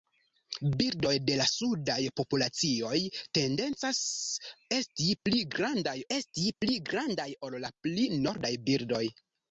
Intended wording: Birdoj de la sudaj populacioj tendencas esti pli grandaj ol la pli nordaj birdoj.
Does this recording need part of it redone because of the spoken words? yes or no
yes